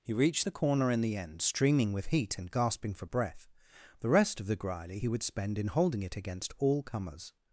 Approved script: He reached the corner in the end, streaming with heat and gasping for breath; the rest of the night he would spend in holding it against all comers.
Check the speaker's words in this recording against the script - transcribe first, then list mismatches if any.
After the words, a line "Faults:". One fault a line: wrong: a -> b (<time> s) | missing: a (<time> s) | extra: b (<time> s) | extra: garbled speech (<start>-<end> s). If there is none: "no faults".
He reached the corner in the end, streaming with heat and gasping for breath; the rest of the grily he would spend in holding it against all comers.
Faults:
wrong: night -> grily (4.5 s)